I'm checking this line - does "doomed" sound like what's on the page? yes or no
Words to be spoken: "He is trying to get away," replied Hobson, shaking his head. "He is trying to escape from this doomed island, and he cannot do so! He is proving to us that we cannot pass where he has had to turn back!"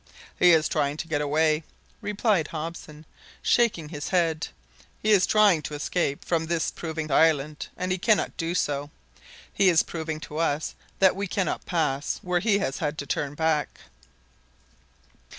no